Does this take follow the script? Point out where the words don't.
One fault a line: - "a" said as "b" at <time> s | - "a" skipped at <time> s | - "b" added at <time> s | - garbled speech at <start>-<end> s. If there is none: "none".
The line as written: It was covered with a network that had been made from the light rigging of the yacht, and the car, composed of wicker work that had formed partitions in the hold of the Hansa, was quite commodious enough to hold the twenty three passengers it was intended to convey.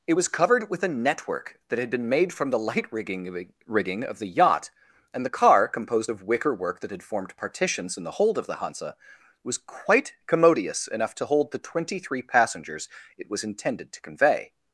- "rigging" added at 3.7 s